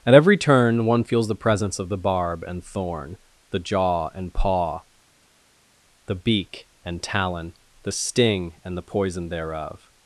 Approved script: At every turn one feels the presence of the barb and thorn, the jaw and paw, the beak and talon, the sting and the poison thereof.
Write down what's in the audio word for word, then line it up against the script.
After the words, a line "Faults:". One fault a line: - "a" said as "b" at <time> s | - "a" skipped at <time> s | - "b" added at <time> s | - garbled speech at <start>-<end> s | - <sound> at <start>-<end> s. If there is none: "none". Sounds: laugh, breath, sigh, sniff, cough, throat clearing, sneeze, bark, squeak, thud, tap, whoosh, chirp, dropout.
At every turn one feels the presence of the barb and thorn, the jaw and paw, the beak and talon, the sting and the poison thereof.
Faults:
none